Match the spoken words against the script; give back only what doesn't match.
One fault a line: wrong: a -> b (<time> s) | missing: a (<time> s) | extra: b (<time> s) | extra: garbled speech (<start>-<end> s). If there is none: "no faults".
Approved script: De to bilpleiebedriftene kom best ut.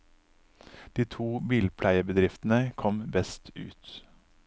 no faults